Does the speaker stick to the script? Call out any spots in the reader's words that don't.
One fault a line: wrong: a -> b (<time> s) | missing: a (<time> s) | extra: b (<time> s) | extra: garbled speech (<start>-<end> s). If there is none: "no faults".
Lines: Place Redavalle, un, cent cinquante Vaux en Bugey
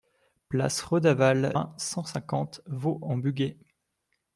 no faults